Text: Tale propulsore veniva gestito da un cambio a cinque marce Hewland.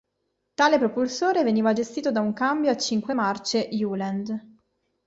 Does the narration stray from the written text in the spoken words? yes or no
no